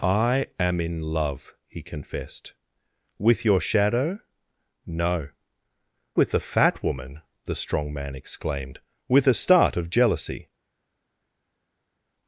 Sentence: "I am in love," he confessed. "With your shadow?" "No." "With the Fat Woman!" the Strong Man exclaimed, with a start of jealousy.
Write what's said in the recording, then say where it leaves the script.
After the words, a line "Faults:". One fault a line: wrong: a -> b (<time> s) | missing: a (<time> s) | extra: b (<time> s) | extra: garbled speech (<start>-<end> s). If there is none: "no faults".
"I am in love," he confessed. "With your shadow?" "No." "With the Fat Woman!" the Strong Man exclaimed, with a start of jealousy.
Faults:
no faults